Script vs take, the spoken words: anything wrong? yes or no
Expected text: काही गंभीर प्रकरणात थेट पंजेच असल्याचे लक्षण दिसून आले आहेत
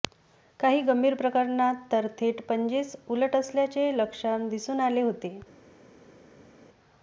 yes